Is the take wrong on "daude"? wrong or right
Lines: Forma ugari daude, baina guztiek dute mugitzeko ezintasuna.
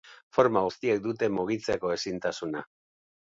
wrong